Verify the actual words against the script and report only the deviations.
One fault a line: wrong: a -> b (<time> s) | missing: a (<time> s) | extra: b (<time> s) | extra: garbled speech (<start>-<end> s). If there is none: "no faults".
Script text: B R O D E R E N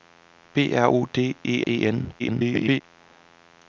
missing: R (1.7 s)
extra: garbled speech (2.2-2.8 s)